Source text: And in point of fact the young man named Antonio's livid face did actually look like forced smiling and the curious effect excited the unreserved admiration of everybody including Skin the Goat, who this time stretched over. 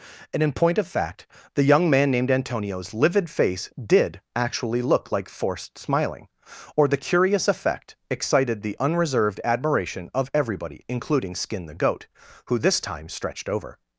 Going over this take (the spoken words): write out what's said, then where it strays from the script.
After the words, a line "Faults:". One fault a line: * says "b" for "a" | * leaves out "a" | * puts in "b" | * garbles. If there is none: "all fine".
And in point of fact the young man named Antonio's livid face did actually look like forced smiling or the curious effect excited the unreserved admiration of everybody including Skin the Goat, who this time stretched over.
Faults:
* says "or" for "and"